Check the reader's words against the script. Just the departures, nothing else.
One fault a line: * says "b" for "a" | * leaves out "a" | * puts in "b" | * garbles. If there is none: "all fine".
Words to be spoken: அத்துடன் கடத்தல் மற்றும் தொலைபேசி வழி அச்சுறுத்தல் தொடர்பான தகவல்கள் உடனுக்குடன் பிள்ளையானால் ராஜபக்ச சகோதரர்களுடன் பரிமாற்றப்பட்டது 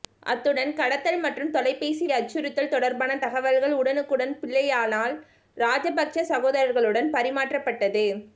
* leaves out "வழி"